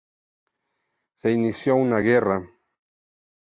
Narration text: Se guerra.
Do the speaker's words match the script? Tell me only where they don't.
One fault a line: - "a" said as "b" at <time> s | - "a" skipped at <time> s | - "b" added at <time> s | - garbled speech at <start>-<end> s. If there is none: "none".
- "inició una" added at 1.3 s